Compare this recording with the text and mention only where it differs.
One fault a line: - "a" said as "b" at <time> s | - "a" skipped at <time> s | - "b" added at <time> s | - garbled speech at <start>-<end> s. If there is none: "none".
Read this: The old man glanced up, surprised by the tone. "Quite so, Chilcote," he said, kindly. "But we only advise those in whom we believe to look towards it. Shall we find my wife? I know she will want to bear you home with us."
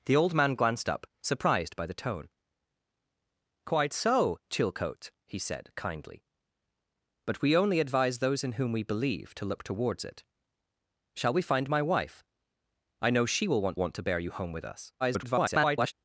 - "want" added at 13.8 s
- garbled speech at 15.0-15.9 s